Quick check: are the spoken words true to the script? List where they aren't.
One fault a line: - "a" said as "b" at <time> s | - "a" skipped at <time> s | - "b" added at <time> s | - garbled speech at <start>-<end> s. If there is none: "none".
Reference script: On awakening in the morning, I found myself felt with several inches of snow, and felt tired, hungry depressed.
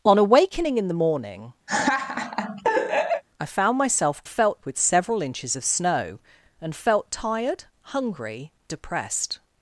none